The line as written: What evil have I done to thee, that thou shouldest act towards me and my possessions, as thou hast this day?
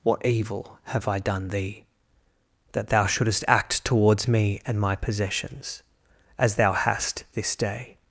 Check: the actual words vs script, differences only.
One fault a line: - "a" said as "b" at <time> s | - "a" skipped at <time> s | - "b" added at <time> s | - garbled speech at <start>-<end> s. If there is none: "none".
- "to" skipped at 1.5 s